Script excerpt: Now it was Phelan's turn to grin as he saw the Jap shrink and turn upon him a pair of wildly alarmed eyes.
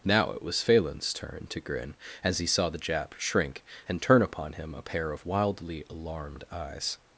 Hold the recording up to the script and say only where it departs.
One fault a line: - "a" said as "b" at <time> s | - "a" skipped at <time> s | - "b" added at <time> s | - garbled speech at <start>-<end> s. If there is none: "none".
none